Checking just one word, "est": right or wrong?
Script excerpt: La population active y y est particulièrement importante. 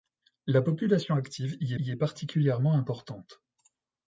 right